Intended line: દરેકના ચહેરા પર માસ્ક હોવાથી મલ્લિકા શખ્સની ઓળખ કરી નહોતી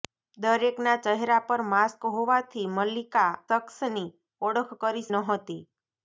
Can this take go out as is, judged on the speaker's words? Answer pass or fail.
pass